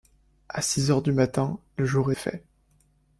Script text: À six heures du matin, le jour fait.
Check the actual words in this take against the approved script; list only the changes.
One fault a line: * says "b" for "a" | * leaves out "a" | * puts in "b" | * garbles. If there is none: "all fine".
all fine